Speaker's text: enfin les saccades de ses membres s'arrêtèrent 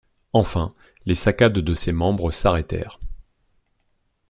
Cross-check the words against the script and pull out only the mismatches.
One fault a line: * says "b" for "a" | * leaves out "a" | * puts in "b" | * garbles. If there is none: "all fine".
all fine